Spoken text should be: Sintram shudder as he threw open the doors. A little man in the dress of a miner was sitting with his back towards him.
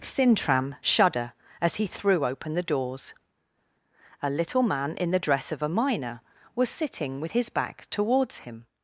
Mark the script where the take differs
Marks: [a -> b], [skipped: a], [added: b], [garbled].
Sintram shudder as he threw open the doors. A little man in the dress of a miner was sitting with his back towards him.